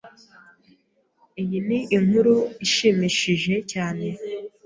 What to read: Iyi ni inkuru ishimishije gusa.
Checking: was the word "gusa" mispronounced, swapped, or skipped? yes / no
yes